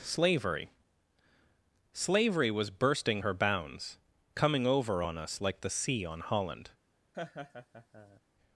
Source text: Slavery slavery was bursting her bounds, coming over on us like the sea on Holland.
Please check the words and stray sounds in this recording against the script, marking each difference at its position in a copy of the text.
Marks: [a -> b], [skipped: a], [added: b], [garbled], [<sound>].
Slavery slavery was bursting her bounds, coming over on us like the sea on Holland. [laugh]